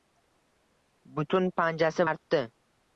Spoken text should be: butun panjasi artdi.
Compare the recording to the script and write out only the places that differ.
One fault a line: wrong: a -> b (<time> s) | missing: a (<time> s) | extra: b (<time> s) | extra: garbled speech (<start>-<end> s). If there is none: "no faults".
no faults